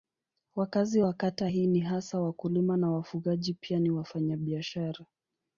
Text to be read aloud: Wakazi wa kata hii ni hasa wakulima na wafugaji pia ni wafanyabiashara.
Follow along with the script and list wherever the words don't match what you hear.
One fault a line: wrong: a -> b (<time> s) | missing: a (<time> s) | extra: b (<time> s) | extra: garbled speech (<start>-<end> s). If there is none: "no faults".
no faults